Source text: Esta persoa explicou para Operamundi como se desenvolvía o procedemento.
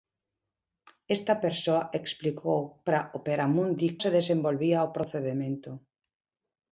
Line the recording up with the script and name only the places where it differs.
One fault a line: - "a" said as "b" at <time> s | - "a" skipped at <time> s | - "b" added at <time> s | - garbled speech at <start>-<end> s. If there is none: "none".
- "como" skipped at 3.9 s